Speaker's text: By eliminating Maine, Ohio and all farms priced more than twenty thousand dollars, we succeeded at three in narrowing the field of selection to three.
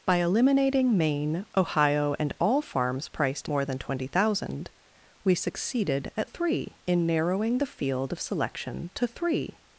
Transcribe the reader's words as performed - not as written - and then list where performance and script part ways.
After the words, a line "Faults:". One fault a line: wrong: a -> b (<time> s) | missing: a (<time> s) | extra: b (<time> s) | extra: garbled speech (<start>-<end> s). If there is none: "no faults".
By eliminating Maine, Ohio and all farms priced more than twenty thousand dollars, we succeeded at three in narrowing the field of selection to three.
Faults:
no faults